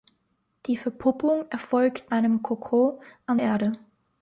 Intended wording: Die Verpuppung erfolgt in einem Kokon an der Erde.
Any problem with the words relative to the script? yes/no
yes